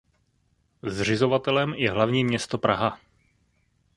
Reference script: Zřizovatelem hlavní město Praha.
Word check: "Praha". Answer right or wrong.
right